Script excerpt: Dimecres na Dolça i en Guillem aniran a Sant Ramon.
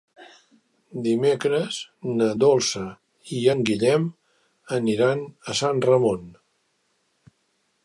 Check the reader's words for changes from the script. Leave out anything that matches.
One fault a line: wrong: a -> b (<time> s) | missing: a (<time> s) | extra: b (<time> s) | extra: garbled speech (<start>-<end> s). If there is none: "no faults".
no faults